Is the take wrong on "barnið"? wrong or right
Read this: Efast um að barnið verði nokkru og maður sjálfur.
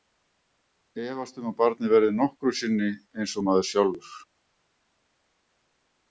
right